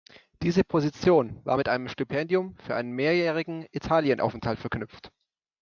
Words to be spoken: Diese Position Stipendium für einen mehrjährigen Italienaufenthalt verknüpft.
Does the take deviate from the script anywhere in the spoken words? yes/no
yes